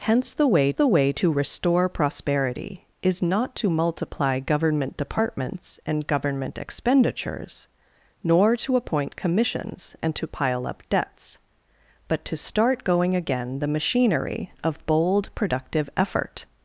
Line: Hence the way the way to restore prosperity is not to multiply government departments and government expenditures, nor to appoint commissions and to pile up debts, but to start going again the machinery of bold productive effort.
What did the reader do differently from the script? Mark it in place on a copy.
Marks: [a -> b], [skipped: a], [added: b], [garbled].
Hence the way the way to restore prosperity is not to multiply government departments and government expenditures, nor to appoint commissions and to pile up debts, but to start going again the machinery of bold productive effort.